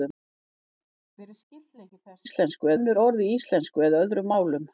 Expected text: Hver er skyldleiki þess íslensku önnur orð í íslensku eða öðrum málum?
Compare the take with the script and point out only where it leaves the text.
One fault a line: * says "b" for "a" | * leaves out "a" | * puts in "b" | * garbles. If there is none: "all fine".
all fine